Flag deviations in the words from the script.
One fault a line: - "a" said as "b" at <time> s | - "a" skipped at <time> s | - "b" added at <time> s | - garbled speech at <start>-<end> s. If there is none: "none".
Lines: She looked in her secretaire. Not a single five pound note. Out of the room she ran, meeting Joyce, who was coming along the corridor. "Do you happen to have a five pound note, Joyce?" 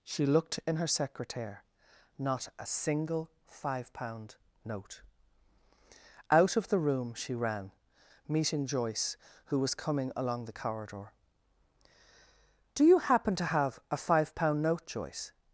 none